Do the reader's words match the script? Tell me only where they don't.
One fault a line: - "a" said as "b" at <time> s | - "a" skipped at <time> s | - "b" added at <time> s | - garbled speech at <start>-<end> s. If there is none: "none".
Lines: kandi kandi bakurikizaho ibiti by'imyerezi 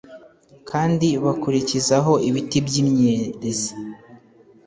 - "kandi" skipped at 1.1 s